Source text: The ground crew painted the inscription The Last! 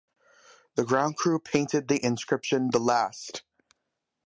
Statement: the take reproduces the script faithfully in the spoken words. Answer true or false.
true